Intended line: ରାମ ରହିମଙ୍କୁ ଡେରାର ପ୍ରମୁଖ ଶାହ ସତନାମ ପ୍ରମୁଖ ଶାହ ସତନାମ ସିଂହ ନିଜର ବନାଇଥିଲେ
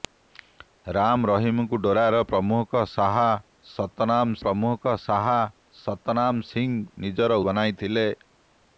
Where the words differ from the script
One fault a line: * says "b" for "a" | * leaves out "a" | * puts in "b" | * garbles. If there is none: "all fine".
all fine